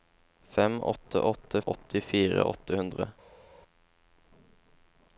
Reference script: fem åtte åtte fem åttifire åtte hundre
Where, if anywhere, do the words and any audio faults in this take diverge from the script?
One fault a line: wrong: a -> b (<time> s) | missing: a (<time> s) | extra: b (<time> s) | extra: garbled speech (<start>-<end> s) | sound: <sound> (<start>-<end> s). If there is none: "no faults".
missing: fem (1.6 s)